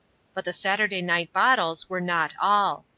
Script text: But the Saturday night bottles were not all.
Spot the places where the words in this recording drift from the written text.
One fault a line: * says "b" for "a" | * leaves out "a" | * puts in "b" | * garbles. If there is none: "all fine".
all fine